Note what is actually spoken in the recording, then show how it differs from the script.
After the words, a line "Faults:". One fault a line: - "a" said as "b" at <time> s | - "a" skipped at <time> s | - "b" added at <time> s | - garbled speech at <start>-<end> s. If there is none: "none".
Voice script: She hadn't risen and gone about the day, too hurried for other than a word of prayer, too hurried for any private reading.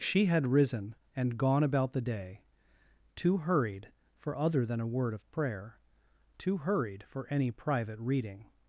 She had risen and gone about the day, too hurried for other than a word of prayer, too hurried for any private reading.
Faults:
- "hadn't" said as "had" at 0.2 s